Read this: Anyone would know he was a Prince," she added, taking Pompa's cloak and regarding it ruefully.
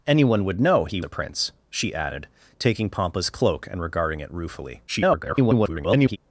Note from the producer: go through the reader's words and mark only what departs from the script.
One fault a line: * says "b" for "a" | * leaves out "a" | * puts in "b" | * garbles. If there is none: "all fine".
* leaves out "was"
* garbles